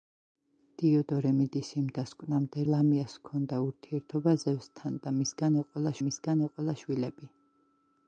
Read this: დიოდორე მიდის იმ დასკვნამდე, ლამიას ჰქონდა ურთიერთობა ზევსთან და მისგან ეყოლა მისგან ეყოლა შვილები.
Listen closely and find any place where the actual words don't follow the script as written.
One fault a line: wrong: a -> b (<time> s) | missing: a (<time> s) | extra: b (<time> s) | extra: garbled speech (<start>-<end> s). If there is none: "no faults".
no faults